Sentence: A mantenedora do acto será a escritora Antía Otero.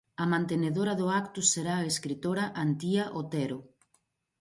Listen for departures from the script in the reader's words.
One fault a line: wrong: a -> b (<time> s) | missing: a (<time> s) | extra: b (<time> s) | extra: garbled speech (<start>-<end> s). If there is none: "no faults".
no faults